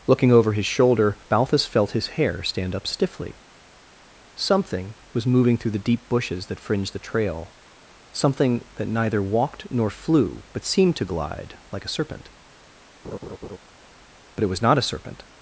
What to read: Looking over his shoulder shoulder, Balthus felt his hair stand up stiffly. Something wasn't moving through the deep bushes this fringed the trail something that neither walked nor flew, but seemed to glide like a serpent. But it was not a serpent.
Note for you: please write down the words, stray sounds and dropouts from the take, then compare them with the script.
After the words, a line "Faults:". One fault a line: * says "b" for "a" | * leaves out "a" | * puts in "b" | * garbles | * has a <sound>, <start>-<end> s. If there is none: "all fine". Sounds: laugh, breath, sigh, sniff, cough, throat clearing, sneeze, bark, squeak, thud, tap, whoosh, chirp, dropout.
Looking over his shoulder, Balthus felt his hair stand up stiffly. Something was moving through the deep bushes that fringed the trail something that neither walked nor flew, but seemed to glide like a serpent. But it was not a serpent.
Faults:
* leaves out "shoulder"
* says "was" for "wasn't"
* says "that" for "this"
* has a laugh, 13.0-13.6 s